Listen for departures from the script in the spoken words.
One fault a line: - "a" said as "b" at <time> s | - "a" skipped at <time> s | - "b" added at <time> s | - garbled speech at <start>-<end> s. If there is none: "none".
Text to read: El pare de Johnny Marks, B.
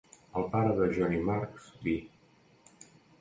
none